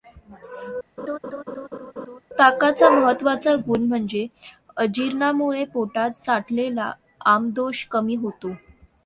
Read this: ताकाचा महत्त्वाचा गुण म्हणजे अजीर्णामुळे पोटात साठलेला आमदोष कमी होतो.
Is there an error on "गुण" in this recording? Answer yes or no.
no